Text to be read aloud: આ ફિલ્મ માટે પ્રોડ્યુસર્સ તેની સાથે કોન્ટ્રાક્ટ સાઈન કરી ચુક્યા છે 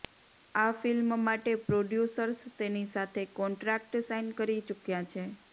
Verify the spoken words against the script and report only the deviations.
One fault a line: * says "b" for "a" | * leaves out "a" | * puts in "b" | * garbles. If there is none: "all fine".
all fine